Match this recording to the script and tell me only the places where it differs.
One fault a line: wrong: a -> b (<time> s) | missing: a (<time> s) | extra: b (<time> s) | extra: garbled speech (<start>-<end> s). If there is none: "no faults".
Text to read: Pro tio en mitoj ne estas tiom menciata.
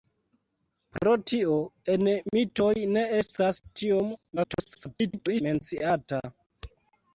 extra: garbled speech (4.4-5.4 s)